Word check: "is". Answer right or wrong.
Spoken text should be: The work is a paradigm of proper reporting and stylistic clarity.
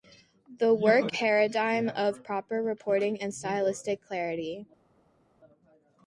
wrong